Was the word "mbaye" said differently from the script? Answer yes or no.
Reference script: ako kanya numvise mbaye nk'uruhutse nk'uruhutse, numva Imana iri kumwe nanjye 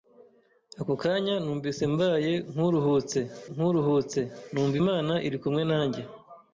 no